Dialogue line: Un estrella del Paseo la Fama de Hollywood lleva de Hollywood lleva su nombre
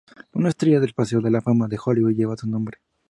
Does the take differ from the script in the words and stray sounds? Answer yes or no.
yes